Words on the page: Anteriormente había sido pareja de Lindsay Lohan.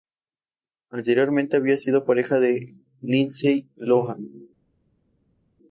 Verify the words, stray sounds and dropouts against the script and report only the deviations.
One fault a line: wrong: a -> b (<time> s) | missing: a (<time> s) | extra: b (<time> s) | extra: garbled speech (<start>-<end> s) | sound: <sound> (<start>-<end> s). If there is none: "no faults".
no faults